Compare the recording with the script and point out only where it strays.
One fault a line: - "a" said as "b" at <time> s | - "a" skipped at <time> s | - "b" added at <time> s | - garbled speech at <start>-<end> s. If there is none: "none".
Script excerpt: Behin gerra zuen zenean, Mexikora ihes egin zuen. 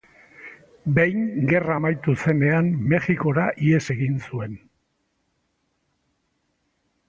- "zuen" said as "amaitu" at 1.8 s